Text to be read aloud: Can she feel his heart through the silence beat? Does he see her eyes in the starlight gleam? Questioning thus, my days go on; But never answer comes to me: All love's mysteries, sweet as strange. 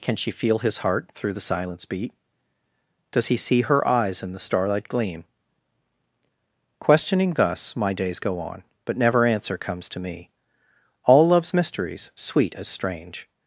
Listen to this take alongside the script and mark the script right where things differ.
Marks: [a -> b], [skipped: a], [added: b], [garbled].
Can she feel his heart through the silence beat? Does he see her eyes in the starlight gleam? Questioning thus, my days go on; But never answer comes to me: All love's mysteries, sweet as strange.